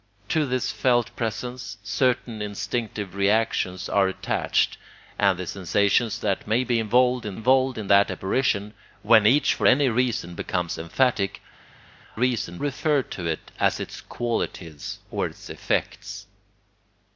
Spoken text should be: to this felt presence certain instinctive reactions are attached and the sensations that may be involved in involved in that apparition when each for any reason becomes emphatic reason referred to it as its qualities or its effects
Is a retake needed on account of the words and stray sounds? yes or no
no